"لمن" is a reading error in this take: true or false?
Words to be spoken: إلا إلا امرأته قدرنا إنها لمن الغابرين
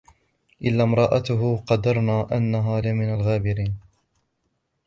false